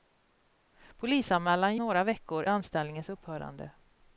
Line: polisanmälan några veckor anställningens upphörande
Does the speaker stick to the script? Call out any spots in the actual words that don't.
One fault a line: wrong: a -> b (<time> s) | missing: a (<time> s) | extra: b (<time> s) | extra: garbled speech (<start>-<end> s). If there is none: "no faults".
no faults